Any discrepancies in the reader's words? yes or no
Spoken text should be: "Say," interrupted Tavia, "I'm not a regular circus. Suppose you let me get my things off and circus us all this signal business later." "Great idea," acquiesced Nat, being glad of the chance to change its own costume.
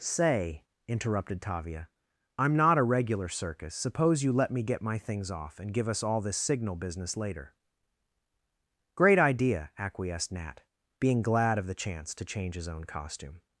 yes